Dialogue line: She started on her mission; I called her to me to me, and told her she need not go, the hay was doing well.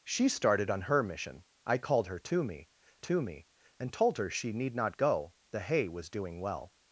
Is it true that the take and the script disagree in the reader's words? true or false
false